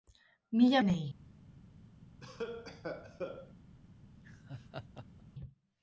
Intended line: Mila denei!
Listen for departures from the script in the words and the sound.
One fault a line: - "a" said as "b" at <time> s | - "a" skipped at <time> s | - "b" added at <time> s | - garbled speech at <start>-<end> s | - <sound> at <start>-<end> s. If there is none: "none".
- cough at 2.2-3.5 s
- laugh at 4.1-5.2 s